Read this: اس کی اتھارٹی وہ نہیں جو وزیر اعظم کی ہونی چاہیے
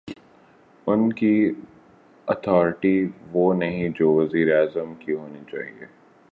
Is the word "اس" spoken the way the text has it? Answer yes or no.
no